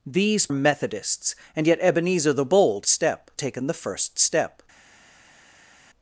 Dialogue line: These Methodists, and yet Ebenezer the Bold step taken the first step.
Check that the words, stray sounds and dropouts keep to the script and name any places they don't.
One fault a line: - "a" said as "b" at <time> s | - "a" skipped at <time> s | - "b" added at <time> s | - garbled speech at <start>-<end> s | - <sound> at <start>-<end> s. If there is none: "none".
none